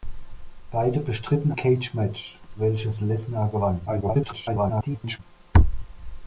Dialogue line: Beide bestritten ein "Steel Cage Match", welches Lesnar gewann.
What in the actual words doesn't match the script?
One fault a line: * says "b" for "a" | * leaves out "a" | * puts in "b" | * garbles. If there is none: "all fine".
* leaves out "ein Steel"
* garbles